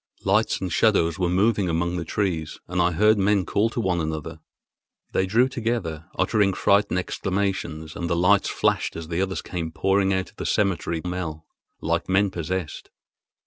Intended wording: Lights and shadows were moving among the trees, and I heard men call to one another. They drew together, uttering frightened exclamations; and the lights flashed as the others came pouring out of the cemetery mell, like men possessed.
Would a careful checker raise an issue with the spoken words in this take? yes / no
no